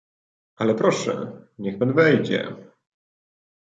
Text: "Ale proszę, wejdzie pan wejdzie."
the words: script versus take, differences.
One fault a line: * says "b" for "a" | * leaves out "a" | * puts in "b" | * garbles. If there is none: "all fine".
* says "niech" for "wejdzie"